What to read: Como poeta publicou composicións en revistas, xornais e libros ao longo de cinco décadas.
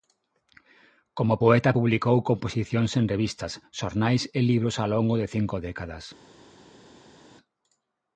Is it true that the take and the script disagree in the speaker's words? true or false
false